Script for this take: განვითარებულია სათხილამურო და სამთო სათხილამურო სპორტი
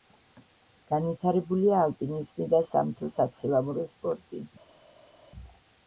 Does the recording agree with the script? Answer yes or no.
no